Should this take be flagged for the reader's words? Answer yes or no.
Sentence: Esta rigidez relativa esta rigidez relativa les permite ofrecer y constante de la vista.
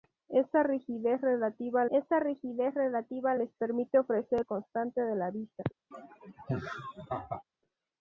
no